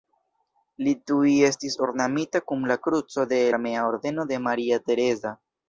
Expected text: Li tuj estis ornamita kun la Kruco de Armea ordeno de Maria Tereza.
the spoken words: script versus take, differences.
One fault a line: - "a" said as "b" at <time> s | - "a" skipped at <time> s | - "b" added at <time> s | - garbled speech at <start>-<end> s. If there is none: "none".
none